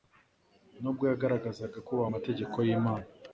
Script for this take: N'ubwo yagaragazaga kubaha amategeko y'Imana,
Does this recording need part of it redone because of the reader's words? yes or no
no